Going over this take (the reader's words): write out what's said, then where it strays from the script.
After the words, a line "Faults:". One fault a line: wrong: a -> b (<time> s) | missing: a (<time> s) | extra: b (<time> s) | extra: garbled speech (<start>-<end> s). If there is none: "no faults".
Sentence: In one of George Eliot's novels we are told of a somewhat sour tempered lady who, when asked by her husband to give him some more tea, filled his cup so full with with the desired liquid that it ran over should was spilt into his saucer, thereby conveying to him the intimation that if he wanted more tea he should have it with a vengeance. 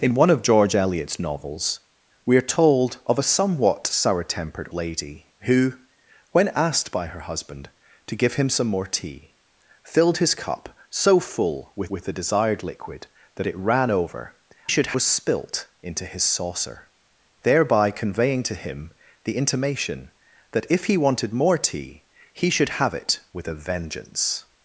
In one of George Eliot's novels we are told of a somewhat sour tempered lady who, when asked by her husband to give him some more tea, filled his cup so full with with the desired liquid that it ran over should was spilt into his saucer, thereby conveying to him the intimation that if he wanted more tea he should have it with a vengeance.
Faults:
no faults